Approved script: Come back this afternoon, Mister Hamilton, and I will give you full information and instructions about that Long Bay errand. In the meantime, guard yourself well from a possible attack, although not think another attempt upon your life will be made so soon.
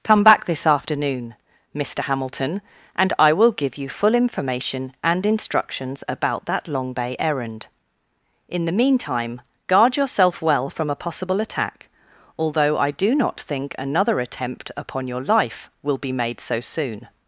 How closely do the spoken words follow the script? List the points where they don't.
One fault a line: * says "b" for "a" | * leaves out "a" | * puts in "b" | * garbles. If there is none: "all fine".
* puts in "I do"